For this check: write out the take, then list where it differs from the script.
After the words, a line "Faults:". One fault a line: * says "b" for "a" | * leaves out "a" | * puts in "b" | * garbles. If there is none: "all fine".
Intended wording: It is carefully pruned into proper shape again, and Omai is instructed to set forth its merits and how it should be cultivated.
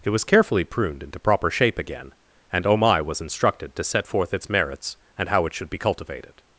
It was carefully pruned into proper shape again, and Omai was instructed to set forth its merits and how it should be cultivated.
Faults:
* says "was" for "is"
* says "was" for "is"